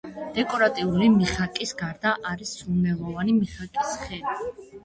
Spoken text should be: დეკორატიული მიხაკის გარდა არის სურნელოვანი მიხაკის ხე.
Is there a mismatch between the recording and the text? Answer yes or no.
no